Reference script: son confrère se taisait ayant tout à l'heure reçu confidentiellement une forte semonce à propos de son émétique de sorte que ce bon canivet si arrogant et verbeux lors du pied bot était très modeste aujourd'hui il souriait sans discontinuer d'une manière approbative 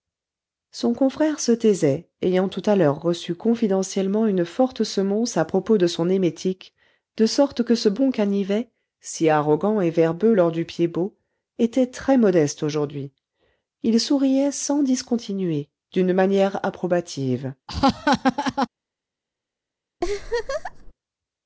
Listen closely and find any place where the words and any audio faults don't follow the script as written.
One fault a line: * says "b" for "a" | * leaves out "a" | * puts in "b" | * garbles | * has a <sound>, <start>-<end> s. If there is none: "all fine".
* has a laugh, 17.7-18.7 s
* has a laugh, 20.0-20.9 s